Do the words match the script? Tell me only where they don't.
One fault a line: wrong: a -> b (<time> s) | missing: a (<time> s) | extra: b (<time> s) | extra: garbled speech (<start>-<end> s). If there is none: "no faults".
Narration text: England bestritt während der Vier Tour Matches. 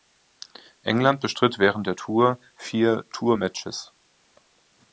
extra: Tour (1.9 s)